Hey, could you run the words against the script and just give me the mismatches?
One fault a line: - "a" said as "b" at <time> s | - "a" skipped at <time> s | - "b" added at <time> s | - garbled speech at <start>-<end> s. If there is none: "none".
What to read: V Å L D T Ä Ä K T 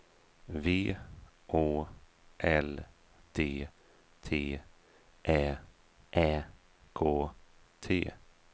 none